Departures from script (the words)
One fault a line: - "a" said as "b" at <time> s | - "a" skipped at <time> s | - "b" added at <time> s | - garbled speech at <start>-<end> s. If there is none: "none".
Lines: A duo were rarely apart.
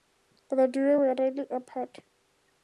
- "A" said as "The" at 0.5 s